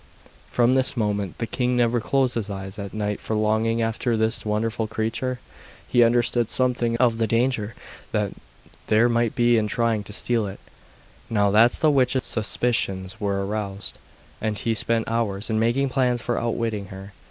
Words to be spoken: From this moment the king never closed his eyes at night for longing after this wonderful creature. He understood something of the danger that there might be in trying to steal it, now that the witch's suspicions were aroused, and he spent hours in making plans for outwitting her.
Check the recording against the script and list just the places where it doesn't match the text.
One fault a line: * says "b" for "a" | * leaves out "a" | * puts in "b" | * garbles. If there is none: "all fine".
all fine